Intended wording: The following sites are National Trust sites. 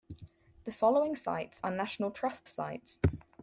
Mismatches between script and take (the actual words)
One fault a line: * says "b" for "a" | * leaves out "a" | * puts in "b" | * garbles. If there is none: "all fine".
all fine